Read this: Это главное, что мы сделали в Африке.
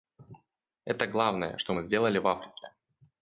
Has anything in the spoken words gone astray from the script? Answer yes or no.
no